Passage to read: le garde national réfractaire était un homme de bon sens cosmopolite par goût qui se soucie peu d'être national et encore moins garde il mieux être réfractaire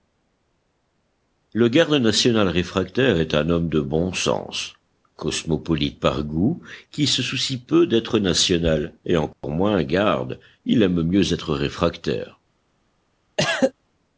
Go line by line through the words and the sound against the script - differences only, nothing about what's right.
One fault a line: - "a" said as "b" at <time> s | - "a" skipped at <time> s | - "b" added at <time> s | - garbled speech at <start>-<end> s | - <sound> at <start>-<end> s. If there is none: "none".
- "était" said as "est" at 3.2 s
- dropout at 9.3-9.4 s
- "aime" added at 10.8 s
- cough at 13.4-13.7 s